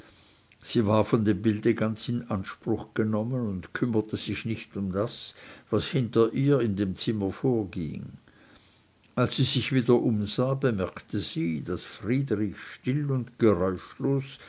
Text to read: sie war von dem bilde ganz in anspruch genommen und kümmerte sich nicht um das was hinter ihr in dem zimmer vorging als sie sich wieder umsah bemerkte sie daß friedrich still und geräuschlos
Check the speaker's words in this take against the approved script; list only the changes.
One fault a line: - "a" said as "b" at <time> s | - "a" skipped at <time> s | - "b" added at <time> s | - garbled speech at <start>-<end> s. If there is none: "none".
none